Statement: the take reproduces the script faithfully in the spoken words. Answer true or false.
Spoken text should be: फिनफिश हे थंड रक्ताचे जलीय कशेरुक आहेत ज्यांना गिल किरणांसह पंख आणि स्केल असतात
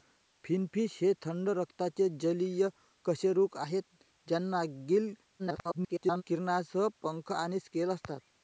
false